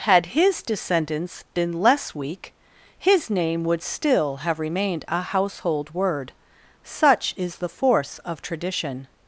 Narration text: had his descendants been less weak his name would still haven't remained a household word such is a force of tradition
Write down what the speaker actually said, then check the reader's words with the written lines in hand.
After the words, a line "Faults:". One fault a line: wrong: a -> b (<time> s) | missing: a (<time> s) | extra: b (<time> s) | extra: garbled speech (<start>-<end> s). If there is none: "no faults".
had his descendants been less weak his name would still have remained a household word such is the force of tradition
Faults:
wrong: haven't -> have (4.4 s)
wrong: a -> the (7.6 s)